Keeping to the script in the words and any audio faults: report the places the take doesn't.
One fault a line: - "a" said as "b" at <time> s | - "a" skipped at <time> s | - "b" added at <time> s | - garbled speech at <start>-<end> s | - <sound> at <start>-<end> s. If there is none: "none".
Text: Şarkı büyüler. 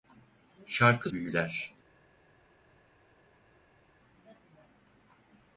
none